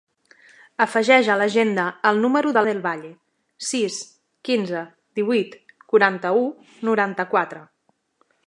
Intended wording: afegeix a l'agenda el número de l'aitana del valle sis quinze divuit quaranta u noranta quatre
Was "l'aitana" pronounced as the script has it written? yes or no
no